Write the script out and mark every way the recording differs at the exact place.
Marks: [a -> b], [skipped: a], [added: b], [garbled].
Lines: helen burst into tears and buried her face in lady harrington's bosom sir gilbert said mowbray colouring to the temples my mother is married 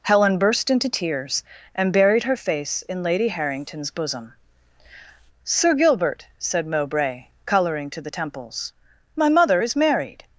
helen burst into tears and buried her face in lady harrington's bosom sir gilbert said mowbray colouring to the temples my mother is married